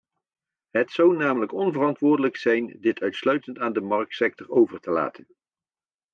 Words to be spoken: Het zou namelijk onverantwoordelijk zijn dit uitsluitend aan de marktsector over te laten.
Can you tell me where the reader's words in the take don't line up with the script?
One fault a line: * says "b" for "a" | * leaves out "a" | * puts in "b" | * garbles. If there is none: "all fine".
all fine